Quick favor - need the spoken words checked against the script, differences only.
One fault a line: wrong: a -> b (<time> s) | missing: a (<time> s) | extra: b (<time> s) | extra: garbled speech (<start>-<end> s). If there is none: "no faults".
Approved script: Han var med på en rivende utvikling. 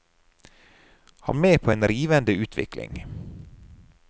missing: var (1.4 s)